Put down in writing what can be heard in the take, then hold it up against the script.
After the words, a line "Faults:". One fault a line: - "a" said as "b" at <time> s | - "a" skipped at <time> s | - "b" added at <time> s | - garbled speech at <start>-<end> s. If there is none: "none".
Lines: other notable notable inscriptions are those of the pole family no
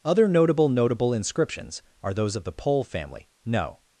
other notable notable inscriptions are those of the pole family no
Faults:
none